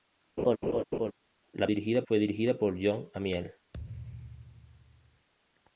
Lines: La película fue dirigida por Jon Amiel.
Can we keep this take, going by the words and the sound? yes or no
no